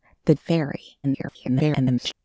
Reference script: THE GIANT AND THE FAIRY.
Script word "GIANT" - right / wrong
wrong